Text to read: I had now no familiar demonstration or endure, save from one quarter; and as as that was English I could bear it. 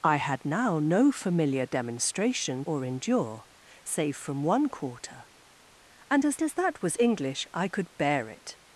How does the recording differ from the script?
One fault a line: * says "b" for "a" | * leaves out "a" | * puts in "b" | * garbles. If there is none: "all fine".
all fine